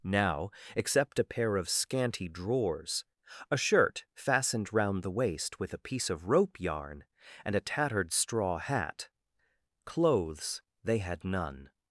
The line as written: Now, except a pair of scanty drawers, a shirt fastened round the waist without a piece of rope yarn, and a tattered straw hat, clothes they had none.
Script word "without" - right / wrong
wrong